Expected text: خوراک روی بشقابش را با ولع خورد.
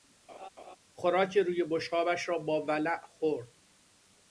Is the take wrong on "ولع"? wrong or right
right